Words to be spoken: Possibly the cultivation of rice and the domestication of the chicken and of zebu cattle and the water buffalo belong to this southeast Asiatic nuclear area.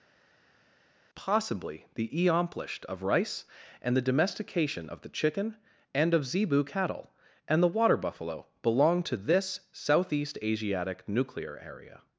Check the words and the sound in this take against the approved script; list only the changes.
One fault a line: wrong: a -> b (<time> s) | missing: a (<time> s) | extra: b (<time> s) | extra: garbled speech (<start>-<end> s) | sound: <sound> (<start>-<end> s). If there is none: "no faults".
wrong: cultivation -> eomplished (2.1 s)